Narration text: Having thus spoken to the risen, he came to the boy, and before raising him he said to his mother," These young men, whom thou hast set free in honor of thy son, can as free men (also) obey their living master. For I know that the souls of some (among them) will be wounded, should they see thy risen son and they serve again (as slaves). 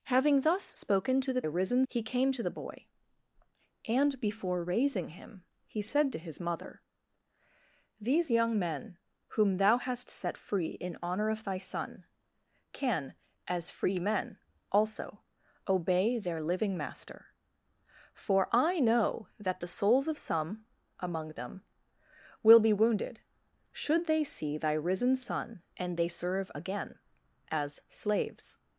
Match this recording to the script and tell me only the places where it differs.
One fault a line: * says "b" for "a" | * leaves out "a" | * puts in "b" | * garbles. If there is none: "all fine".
all fine